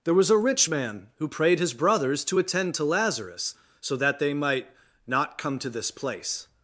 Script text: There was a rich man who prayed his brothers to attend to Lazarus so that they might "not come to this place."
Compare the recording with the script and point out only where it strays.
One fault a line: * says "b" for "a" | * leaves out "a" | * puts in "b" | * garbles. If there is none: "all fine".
all fine